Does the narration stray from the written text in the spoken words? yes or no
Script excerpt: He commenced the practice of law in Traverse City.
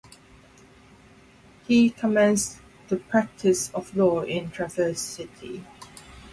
no